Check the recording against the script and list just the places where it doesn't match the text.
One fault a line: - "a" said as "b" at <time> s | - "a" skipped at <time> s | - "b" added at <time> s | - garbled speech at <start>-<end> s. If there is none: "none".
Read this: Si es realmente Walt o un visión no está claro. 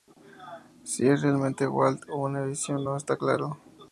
- "un" said as "una" at 2.2 s